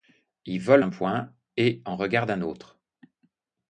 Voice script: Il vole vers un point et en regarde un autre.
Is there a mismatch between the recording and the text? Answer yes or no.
yes